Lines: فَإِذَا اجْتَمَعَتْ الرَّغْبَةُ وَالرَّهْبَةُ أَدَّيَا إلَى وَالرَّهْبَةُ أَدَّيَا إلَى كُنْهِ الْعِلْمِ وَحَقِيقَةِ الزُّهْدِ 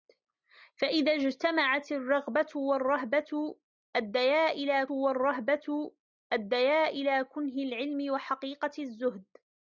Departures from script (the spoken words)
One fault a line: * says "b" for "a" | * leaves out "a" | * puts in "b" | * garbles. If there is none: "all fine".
all fine